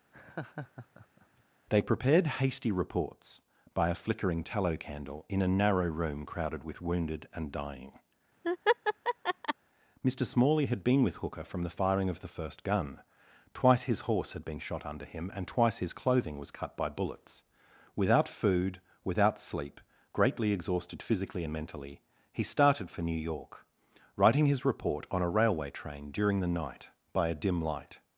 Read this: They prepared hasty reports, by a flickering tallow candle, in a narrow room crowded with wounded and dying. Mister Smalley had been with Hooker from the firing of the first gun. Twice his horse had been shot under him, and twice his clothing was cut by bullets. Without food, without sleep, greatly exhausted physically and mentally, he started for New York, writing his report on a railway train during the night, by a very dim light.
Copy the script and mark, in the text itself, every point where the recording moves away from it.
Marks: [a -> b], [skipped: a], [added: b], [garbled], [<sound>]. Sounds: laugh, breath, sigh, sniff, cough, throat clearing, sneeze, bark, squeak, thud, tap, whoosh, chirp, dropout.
[laugh] They prepared hasty reports, by a flickering tallow candle, in a narrow room crowded with wounded and dying. [laugh] Mister Smalley had been with Hooker from the firing of the first gun. Twice his horse had been shot under him, and twice his clothing was cut by bullets. Without food, without sleep, greatly exhausted physically and mentally, he started for New York, writing his report on a railway train during the night, by a [skipped: very] dim light.